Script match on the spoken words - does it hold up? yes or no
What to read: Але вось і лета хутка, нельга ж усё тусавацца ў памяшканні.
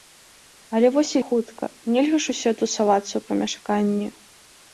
no